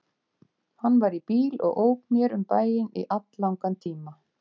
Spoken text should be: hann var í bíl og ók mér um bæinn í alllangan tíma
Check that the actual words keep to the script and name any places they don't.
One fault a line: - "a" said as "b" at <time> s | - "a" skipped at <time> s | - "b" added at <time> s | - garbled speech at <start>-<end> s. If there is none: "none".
none